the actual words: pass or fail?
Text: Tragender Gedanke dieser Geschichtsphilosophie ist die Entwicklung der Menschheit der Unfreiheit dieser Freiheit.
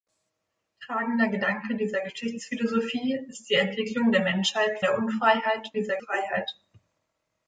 pass